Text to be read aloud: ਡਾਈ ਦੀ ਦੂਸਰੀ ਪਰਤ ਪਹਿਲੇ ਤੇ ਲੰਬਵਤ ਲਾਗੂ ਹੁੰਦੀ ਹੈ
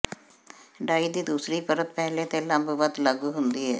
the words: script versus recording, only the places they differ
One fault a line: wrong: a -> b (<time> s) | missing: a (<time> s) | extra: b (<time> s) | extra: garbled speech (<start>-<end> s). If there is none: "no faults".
no faults